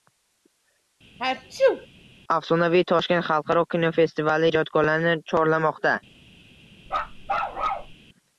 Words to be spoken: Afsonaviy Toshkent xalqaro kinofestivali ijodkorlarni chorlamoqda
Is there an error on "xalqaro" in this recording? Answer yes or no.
no